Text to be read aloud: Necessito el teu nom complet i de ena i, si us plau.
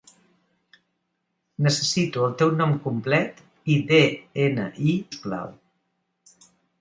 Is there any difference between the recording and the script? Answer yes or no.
yes